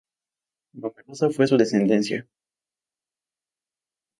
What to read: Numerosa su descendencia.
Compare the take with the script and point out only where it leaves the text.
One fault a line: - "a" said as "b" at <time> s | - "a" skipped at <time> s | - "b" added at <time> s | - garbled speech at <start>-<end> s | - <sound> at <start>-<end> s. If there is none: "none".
- "fue" added at 1.3 s